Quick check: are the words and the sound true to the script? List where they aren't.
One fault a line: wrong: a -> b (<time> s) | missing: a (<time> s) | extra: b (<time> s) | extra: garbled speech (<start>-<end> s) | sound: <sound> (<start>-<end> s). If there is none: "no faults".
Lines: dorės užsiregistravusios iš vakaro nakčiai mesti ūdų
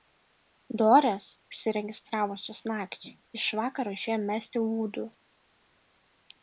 extra: nakčiai (2.7 s)
wrong: nakčiai -> išėjo (4.0 s)